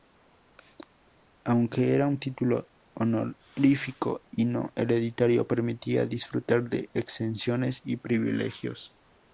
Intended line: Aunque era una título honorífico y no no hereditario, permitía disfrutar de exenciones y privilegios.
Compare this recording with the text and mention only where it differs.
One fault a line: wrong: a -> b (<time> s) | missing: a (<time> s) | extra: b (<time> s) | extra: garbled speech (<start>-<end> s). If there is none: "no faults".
wrong: una -> un (2.1 s)
missing: no (4.7 s)